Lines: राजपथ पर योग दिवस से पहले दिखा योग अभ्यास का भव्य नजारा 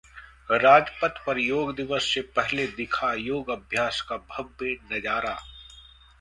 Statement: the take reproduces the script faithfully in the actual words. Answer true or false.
true